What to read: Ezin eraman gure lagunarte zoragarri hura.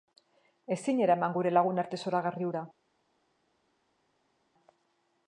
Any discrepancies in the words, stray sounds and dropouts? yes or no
no